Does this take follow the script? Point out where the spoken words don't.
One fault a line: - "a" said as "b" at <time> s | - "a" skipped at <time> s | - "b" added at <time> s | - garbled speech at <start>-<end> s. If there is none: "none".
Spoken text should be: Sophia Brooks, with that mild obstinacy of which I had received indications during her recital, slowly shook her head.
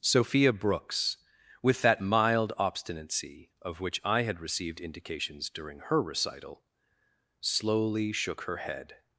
none